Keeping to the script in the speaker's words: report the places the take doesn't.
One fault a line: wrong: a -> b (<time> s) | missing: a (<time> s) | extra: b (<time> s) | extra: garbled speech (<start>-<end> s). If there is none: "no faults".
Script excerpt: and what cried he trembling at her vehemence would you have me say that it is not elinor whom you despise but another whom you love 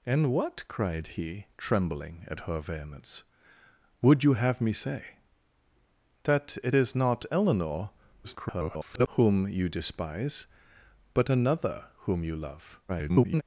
extra: garbled speech (8.2-9.1 s)
extra: garbled speech (12.9-13.4 s)